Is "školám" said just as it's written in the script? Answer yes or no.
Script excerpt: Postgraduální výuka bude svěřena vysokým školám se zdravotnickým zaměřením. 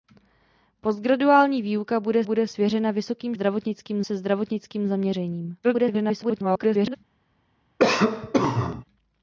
no